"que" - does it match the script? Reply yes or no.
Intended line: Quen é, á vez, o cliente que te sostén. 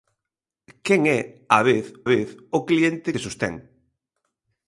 no